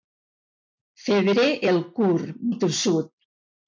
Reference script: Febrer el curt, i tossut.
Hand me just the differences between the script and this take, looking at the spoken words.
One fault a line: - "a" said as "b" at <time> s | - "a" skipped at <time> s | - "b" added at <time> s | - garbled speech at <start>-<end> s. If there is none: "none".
none